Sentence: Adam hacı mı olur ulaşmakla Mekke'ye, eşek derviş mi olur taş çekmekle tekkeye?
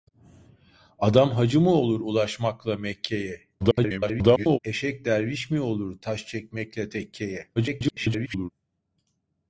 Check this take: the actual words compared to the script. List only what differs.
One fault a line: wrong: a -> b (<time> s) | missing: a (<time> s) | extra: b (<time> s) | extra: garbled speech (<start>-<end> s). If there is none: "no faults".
extra: garbled speech (3.6-4.6 s)
extra: garbled speech (7.6-8.5 s)